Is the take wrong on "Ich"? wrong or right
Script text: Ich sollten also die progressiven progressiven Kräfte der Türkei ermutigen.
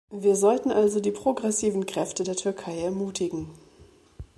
wrong